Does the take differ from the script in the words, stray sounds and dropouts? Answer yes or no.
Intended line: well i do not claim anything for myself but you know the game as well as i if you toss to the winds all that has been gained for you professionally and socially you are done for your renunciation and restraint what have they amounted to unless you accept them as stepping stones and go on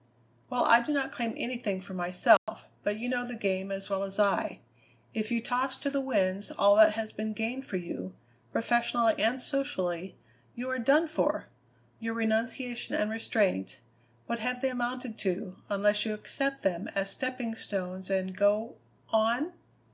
yes